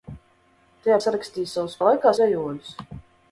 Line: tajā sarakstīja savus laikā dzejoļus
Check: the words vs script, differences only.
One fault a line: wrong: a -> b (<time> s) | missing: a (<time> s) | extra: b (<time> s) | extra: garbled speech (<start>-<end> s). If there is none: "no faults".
no faults